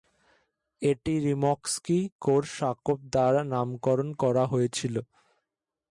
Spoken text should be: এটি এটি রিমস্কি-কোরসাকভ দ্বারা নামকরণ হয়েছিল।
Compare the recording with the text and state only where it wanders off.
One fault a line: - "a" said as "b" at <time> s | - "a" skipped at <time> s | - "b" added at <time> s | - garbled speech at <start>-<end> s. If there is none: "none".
- "এটি" skipped at 1.1 s
- "করা" added at 4.2 s